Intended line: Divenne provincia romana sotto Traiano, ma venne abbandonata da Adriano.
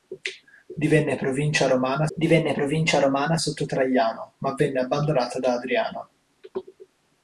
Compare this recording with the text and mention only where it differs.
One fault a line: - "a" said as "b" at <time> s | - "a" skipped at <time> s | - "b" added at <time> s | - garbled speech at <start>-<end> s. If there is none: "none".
- "divenne provincia romana" added at 2.2 s